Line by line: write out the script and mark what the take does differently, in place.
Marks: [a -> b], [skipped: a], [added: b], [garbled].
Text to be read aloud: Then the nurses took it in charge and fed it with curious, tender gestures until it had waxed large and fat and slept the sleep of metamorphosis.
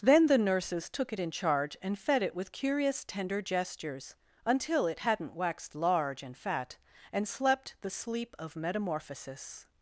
Then the nurses took it in charge and fed it with curious, tender gestures until it [had -> hadn't] waxed large and fat and slept the sleep of metamorphosis.